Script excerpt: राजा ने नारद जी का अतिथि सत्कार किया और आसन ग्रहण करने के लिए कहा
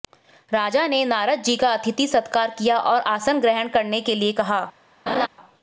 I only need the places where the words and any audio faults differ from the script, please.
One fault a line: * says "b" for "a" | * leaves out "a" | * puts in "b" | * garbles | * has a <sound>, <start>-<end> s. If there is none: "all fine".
* has a laugh, 5.1-5.3 s